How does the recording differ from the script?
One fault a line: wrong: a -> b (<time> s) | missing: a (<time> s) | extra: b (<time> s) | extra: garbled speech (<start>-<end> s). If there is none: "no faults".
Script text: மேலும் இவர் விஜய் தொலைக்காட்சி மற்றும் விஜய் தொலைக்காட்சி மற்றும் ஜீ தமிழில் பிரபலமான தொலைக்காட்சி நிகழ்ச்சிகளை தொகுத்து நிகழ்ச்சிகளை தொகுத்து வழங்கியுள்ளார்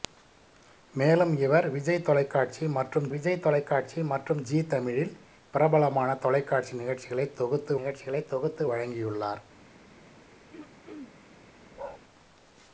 no faults